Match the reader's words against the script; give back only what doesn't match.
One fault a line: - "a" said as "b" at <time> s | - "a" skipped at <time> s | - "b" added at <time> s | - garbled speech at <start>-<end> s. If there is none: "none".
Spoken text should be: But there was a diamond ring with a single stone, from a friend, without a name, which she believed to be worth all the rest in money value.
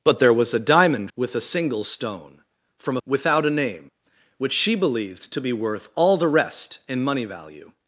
- "ring" skipped at 1.1 s
- "a friend" skipped at 3.0 s